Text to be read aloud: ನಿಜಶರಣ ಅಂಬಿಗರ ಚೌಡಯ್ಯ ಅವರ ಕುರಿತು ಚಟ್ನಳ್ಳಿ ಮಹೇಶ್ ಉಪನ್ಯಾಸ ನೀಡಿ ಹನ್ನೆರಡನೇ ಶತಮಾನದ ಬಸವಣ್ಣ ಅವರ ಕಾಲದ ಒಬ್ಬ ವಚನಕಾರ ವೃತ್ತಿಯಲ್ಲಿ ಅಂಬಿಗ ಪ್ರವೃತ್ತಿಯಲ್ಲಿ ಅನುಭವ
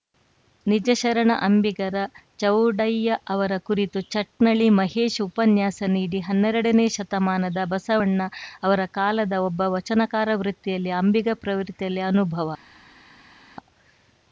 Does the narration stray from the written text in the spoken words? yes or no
no